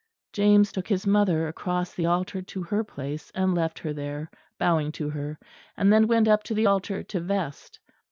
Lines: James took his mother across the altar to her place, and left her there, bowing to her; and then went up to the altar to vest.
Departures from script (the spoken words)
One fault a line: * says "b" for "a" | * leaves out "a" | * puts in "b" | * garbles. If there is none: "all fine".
all fine